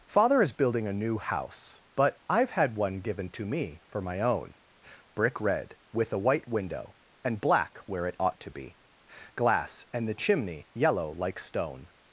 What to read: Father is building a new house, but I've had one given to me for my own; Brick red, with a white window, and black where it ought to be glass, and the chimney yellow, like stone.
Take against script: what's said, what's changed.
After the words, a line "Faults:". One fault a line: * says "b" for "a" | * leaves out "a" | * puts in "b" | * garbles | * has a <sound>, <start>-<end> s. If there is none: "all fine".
Father is building a new house, but I've had one given to me for my own; Brick red, with a white window, and black where it ought to be glass, and the chimney yellow, like stone.
Faults:
all fine